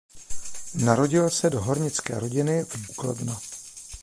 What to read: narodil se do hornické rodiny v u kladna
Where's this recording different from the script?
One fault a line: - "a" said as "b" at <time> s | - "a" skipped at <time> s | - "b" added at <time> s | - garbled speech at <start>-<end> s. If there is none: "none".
none